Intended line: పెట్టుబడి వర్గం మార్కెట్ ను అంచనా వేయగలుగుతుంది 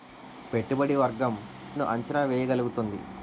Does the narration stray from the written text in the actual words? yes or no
yes